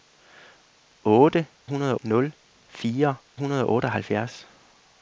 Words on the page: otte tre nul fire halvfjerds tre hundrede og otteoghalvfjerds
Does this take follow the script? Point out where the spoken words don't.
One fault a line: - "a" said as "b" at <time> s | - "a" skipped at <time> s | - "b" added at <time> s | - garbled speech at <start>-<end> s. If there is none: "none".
- "tre" said as "hundrede" at 1.6 s
- "halvfjerds tre" skipped at 3.2 s